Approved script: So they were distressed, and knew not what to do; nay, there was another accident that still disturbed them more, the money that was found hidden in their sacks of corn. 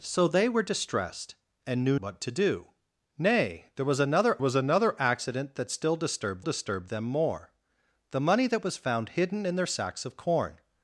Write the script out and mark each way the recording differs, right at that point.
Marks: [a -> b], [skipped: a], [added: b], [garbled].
So they were distressed, and knew [skipped: not] what to do; nay, there was another [added: was another] accident that still disturbed [added: disturbed] them more, the money that was found hidden in their sacks of corn.